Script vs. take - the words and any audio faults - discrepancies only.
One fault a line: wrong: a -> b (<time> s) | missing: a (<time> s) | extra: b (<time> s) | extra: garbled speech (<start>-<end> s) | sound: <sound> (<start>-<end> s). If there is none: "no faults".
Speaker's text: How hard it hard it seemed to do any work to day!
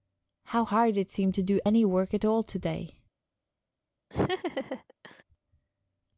missing: hard it (1.1 s)
extra: at all (2.1 s)
sound: laugh (4.1-5.2 s)